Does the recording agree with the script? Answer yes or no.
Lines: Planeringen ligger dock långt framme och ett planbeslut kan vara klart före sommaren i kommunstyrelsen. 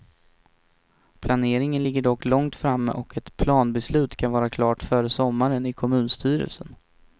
yes